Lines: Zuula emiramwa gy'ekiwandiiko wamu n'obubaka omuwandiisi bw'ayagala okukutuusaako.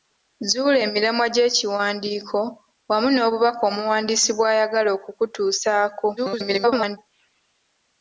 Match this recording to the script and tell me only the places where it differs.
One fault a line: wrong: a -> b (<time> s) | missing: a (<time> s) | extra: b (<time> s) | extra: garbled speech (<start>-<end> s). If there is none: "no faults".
extra: garbled speech (6.2-7.0 s)